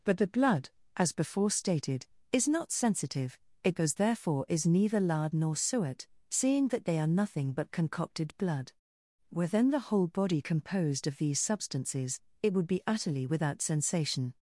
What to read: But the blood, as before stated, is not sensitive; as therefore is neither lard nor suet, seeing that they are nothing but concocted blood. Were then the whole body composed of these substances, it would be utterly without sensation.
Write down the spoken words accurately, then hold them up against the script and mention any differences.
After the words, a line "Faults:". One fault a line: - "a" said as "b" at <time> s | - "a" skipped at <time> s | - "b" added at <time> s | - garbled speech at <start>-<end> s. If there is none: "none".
But the blood, as before stated, is not sensitive; it goes therefore is neither lard nor suet, seeing that they are nothing but concocted blood. Were then the whole body composed of these substances, it would be utterly without sensation.
Faults:
- "as" said as "it goes" at 3.6 s